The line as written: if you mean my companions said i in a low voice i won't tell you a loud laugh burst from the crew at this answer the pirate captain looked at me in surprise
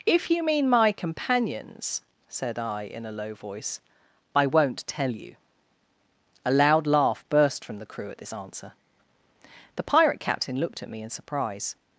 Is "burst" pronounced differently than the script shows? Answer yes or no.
no